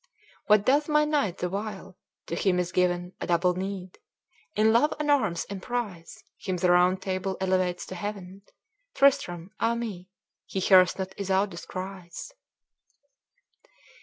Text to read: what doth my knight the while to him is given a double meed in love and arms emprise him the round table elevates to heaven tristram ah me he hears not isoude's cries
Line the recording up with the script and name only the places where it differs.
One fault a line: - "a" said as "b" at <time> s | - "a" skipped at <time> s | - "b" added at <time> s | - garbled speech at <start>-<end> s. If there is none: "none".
none